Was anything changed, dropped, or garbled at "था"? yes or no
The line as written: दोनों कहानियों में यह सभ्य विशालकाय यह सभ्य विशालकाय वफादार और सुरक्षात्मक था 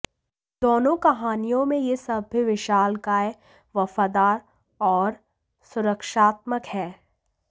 yes